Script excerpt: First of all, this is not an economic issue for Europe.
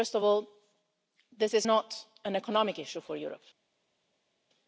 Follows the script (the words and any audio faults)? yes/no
yes